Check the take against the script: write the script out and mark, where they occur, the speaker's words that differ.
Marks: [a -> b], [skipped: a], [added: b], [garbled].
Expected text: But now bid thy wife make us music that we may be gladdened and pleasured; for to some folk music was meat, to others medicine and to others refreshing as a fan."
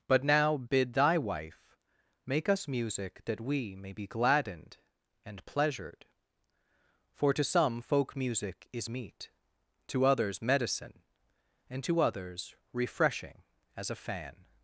But now bid thy wife make us music that we may be gladdened and pleasured; for to some folk music [was -> is] meat, to others medicine and to others refreshing as a fan."